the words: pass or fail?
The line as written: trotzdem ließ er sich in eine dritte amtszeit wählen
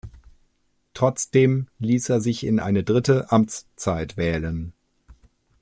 pass